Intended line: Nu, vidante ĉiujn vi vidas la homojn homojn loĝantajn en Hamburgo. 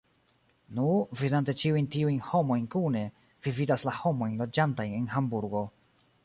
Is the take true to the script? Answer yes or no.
no